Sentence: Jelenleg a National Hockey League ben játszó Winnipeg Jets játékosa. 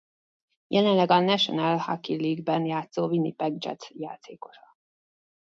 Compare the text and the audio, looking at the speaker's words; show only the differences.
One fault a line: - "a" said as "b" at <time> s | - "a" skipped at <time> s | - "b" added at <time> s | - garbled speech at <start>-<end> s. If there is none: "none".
none